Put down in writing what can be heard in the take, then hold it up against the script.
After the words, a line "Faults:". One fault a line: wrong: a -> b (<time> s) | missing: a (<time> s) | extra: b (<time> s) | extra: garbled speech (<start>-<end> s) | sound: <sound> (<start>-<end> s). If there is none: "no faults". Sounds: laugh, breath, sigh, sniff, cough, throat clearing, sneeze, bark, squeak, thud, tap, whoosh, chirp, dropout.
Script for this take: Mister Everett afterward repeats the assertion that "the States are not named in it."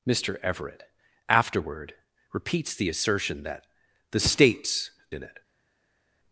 Mister Everett afterward repeats the assertion that "the States in it."
Faults:
missing: are not named (4.9 s)